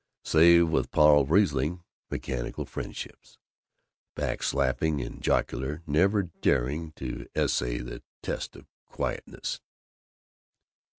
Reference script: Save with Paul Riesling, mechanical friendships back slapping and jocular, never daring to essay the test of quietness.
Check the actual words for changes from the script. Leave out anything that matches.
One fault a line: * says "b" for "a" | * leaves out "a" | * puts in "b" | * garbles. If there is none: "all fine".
all fine